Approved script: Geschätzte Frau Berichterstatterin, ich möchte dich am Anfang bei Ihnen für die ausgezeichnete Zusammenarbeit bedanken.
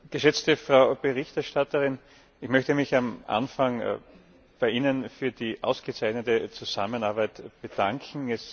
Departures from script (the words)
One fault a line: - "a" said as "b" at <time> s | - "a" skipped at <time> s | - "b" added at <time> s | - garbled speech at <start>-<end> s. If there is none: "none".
- "dich" said as "mich" at 2.7 s